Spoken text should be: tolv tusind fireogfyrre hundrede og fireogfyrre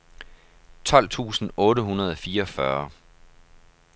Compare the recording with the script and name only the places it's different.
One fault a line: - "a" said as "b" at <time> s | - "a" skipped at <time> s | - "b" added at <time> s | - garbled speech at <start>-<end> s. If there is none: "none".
- "fireogfyrre" said as "otte" at 1.6 s